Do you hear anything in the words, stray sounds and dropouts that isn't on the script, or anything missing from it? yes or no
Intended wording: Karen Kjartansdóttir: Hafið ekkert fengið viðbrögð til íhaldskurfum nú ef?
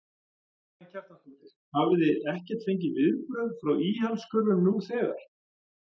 yes